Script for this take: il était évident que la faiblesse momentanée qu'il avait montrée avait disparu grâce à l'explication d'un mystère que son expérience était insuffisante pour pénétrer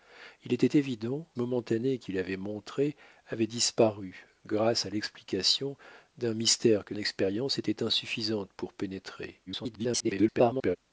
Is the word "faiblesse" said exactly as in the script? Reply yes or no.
no